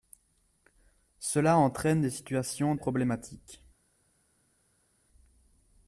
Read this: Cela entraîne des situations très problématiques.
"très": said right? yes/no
no